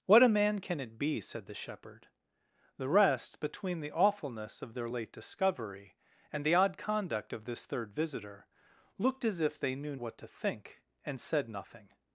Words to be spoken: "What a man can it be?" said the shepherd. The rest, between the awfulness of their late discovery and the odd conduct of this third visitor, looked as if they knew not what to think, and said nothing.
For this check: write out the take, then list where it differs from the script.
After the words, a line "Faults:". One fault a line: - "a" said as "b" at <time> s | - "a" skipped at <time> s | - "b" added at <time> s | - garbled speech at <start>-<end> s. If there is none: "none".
"What a man can it be?" said the shepherd. The rest, between the awfulness of their late discovery and the odd conduct of this third visitor, looked as if they knew what to think, and said nothing.
Faults:
- "not" skipped at 10.0 s